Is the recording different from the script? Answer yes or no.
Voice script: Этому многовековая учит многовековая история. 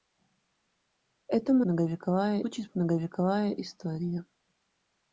no